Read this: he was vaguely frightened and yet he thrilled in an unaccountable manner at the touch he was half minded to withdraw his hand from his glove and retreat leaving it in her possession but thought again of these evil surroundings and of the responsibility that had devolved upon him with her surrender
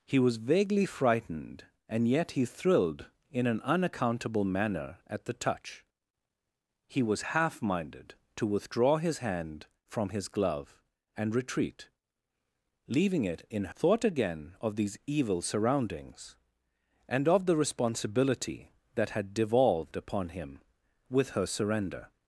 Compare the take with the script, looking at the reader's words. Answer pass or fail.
fail